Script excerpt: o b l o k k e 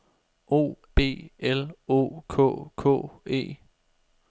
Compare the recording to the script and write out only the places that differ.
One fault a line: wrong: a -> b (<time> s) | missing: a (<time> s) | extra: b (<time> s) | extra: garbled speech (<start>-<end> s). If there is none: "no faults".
no faults